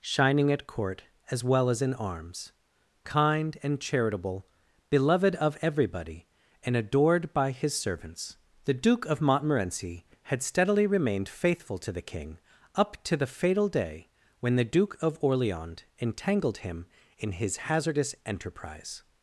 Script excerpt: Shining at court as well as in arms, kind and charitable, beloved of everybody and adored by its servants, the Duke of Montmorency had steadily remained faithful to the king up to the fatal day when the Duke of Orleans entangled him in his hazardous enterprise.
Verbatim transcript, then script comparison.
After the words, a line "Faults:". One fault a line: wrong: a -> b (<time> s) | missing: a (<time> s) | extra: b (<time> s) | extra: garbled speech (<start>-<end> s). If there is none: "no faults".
Shining at court as well as in arms, kind and charitable, beloved of everybody and adored by his servants, the Duke of Montmorency had steadily remained faithful to the king up to the fatal day when the Duke of Orleans entangled him in his hazardous enterprise.
Faults:
wrong: its -> his (7.5 s)